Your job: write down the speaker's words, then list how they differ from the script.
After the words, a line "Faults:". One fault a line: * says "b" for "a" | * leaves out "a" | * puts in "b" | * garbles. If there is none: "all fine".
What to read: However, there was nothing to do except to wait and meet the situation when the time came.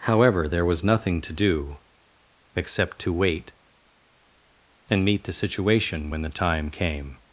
However, there was nothing to do except to wait and meet the situation when the time came.
Faults:
all fine